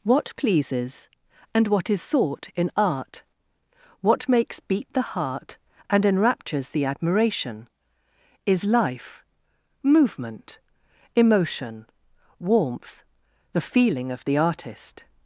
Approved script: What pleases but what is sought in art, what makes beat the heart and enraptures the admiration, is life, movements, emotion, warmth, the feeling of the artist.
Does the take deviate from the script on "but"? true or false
true